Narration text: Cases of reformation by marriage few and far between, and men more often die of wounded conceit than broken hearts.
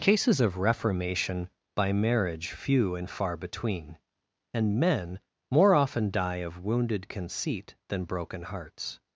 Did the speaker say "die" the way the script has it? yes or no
yes